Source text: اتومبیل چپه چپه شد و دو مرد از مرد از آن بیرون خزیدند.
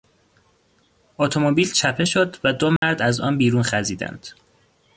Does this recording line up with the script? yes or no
no